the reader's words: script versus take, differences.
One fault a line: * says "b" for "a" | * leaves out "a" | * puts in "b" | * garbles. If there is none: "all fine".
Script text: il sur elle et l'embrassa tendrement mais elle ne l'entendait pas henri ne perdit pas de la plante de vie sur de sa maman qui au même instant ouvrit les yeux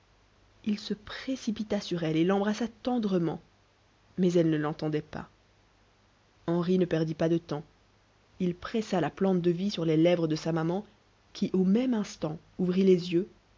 * puts in "se précipita"
* puts in "temps il pressa"
* puts in "les lèvres"